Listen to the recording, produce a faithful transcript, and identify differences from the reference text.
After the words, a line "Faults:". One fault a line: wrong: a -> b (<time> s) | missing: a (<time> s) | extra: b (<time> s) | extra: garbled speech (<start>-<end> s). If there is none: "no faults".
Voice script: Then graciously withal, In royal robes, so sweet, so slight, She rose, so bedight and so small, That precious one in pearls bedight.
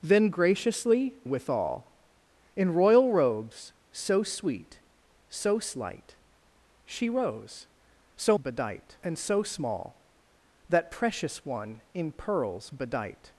Then graciously withal, In royal robes, so sweet, so slight, She rose, so bedight and so small, That precious one in pearls bedight.
Faults:
no faults